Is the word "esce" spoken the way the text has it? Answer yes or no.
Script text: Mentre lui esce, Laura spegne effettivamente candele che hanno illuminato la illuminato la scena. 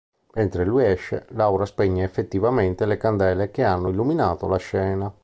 yes